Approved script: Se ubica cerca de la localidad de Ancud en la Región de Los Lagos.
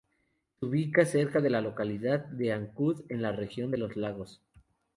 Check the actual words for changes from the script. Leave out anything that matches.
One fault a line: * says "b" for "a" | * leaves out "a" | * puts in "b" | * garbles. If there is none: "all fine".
all fine